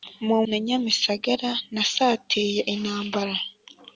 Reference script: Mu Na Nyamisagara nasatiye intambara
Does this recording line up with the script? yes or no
yes